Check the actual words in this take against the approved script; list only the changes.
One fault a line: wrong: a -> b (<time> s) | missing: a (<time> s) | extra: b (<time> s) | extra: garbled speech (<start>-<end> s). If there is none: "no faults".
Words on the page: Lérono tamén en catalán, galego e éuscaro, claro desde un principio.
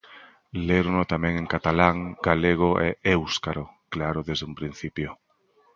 no faults